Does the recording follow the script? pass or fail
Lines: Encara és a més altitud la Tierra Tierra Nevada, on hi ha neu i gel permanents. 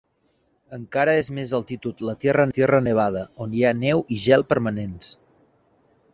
pass